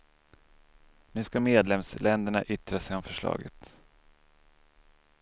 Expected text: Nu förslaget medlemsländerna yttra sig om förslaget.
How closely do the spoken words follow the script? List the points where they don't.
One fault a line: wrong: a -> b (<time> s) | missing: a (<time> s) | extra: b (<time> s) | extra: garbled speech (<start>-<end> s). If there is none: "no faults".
wrong: förslaget -> ska (1.2 s)